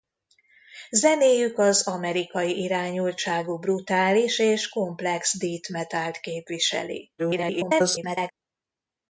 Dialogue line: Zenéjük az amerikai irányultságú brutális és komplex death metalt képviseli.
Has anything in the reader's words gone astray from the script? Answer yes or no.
yes